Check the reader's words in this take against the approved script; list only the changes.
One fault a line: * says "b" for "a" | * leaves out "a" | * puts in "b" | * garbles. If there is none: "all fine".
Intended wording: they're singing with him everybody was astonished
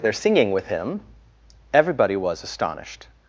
all fine